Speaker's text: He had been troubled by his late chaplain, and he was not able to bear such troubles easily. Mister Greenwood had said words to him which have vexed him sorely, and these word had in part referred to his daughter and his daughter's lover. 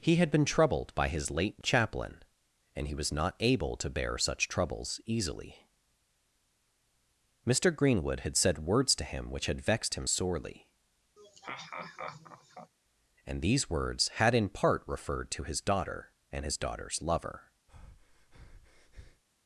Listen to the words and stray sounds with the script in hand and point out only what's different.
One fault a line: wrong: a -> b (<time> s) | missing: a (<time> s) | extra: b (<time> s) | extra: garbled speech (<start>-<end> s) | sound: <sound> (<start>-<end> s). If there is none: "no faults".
wrong: have -> had (9.5 s)
sound: laugh (11.2-12.7 s)
wrong: word -> words (13.7 s)
sound: breath (17.7-19.2 s)